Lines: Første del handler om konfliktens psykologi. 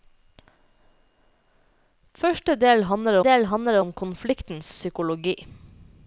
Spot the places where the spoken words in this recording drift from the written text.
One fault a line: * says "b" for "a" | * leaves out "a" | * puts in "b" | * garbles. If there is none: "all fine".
* puts in "del handler"